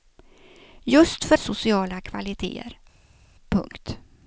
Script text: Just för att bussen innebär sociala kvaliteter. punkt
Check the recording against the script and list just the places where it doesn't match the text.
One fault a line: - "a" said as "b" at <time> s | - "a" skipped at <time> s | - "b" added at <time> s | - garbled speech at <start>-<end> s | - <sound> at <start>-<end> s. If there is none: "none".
- "att bussen innebär" skipped at 1.4 s